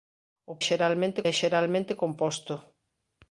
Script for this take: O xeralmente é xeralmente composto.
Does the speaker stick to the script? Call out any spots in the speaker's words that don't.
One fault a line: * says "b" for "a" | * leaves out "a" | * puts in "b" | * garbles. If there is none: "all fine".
all fine